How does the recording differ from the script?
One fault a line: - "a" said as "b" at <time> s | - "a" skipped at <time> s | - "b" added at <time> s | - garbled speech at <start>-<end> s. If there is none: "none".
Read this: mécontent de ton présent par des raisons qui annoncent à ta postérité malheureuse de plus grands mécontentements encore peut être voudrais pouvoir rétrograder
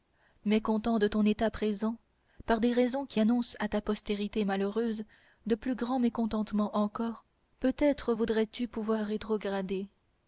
- "état" added at 1.3 s
- "tu" added at 8.5 s